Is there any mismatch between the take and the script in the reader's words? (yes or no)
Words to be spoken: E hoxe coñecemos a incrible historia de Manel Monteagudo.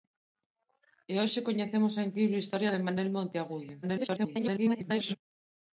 yes